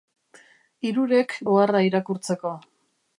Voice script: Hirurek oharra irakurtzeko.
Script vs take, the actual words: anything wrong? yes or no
no